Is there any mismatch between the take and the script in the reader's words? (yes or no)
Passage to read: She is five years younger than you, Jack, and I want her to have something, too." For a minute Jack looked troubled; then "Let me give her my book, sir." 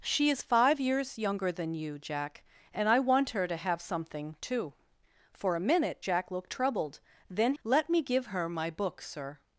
no